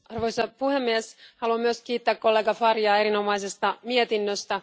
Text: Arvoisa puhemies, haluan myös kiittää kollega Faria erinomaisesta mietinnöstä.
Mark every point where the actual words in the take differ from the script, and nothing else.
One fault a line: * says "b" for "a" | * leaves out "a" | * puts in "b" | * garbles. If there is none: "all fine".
all fine